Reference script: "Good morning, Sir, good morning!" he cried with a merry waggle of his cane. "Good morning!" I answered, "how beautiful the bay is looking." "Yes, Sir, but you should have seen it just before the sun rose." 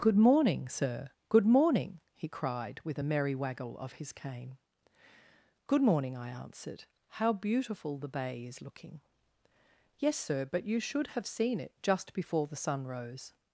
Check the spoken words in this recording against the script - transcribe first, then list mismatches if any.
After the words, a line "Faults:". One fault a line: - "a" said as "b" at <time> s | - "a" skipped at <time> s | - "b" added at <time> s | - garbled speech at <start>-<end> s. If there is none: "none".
"Good morning, Sir, good morning!" he cried with a merry waggle of his cane. "Good morning!" I answered, "how beautiful the bay is looking." "Yes, Sir, but you should have seen it just before the sun rose."
Faults:
none